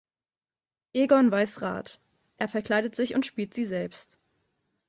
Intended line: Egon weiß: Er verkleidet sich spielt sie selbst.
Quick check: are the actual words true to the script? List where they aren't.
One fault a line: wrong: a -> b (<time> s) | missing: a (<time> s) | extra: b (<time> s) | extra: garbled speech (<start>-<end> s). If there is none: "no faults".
extra: Rat (1.6 s)
extra: und (3.1 s)